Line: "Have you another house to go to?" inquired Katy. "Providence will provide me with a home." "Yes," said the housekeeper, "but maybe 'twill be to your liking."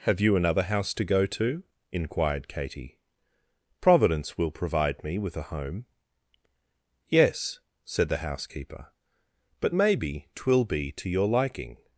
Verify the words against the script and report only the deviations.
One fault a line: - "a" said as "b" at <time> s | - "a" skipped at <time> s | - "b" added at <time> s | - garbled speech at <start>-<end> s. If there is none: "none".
none